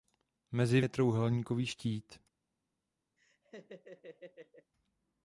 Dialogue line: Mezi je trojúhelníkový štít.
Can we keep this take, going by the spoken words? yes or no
yes